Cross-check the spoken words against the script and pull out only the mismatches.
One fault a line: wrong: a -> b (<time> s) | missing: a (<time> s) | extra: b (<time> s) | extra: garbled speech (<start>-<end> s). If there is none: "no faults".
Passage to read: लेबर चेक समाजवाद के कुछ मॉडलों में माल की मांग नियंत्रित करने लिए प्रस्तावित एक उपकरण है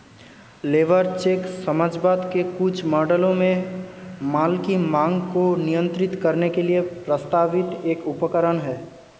extra: को (5.3 s)
extra: के (6.5 s)